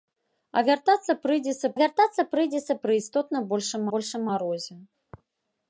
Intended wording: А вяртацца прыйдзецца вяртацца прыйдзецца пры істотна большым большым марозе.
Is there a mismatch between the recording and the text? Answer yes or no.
no